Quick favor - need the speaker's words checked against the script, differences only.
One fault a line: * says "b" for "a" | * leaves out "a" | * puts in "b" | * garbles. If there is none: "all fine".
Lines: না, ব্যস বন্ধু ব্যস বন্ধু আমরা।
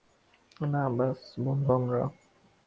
* leaves out "ব্যস বন্ধু"